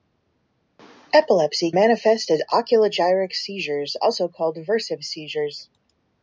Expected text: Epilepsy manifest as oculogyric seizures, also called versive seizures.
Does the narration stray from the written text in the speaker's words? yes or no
no